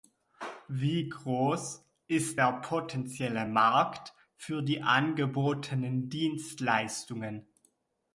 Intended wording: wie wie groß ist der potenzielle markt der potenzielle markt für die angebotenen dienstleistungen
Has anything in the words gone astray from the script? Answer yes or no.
yes